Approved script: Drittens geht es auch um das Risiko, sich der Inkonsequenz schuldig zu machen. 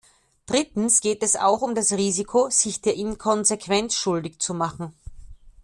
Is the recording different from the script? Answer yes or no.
no